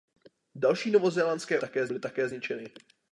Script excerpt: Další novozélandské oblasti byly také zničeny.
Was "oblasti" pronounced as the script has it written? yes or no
no